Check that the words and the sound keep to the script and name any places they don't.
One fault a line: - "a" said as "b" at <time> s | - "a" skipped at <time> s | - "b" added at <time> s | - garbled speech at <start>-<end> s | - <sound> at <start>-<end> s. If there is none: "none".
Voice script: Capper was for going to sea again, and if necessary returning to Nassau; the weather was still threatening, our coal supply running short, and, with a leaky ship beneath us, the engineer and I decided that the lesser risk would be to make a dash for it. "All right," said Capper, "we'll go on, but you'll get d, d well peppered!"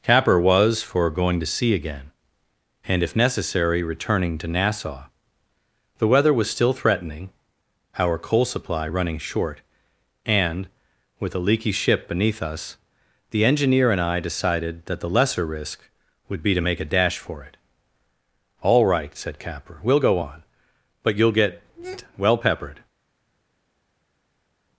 - "d d" skipped at 21.6 s